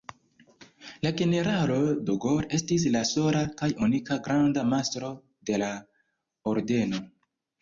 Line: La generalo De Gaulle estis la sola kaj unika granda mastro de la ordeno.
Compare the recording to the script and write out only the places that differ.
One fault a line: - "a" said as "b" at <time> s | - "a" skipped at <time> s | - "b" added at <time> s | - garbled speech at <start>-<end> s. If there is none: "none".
none